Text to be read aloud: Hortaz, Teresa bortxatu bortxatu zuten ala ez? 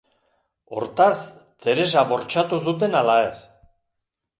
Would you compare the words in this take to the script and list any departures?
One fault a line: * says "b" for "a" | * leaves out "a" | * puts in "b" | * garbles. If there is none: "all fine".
* leaves out "bortxatu"